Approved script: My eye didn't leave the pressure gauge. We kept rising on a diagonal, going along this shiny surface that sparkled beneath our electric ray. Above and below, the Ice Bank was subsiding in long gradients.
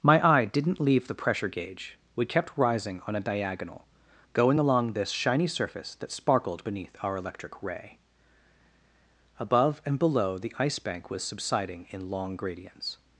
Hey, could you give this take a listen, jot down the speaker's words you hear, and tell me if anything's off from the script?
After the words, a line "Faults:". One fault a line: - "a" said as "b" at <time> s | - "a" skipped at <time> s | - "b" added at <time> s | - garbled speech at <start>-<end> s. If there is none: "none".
My eye didn't leave the pressure gauge. We kept rising on a diagonal, going along this shiny surface that sparkled beneath our electric ray. Above and below, the Ice Bank was subsiding in long gradients.
Faults:
none